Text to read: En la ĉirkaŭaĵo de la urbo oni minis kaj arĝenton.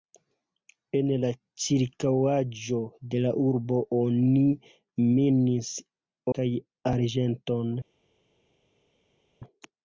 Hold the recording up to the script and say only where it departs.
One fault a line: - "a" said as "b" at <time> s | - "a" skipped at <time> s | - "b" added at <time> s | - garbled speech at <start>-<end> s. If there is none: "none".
none